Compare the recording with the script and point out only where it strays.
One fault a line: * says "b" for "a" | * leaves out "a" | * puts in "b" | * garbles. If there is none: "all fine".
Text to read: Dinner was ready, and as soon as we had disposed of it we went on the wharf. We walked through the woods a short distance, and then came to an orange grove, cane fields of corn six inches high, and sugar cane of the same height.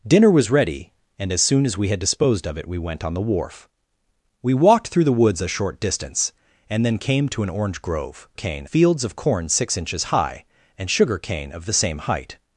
all fine